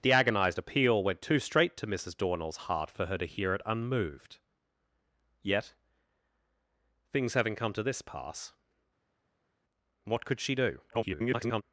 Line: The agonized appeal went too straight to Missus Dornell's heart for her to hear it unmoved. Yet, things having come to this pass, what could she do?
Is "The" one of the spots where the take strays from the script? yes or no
no